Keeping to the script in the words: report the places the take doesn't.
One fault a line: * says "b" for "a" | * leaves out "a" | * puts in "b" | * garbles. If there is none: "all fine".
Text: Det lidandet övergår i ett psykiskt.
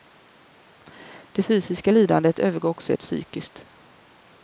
* puts in "fysiska"
* puts in "också"